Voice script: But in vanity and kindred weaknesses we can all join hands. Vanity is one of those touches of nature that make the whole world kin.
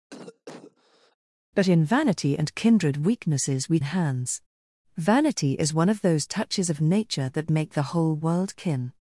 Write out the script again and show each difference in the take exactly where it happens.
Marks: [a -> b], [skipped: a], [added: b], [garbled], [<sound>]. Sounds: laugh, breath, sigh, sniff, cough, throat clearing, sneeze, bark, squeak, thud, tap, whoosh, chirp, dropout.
[cough] But in vanity and kindred weaknesses we [skipped: can all join] hands. Vanity is one of those touches of nature that make the whole world kin.